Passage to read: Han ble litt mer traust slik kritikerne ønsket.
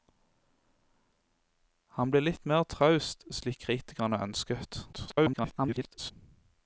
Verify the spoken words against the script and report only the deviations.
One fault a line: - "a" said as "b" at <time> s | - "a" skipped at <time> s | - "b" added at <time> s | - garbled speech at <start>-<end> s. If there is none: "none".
- garbled speech at 4.9-6.1 s